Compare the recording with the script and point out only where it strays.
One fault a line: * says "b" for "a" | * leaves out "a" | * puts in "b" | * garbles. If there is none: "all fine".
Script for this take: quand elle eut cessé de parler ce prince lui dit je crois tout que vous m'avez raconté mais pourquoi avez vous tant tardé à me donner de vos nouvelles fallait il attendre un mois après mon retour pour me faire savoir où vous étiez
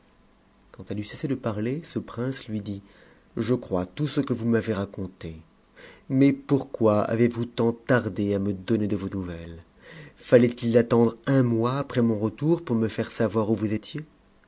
* puts in "ce"